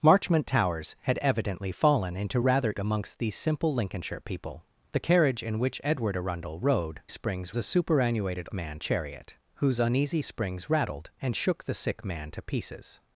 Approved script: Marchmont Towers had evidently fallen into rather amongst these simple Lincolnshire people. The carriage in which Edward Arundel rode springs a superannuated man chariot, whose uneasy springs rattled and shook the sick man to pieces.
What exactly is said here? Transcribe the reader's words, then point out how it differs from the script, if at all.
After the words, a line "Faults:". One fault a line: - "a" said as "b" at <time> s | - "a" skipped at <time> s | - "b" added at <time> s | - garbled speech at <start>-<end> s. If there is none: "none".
Marchmont Towers had evidently fallen into rather amongst these simple Lincolnshire people. The carriage in which Edward Arundel rode springs a superannuated man chariot, whose uneasy springs rattled and shook the sick man to pieces.
Faults:
none